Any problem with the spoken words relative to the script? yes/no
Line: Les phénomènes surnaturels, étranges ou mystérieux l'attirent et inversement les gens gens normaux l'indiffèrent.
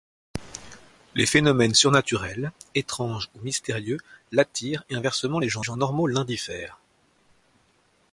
no